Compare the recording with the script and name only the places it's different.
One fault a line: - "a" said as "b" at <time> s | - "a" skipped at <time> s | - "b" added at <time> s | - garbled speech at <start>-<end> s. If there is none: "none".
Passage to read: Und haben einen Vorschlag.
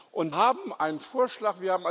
none